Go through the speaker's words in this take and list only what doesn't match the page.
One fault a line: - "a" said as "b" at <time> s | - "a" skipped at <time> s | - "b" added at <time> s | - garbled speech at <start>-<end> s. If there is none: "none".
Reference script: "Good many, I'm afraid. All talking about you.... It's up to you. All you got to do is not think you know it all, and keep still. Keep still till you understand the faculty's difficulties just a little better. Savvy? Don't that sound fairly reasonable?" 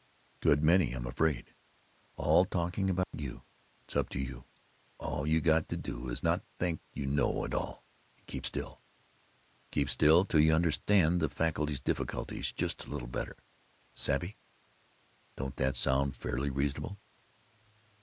none